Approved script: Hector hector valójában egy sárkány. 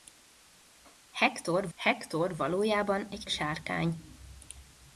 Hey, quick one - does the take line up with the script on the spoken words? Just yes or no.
yes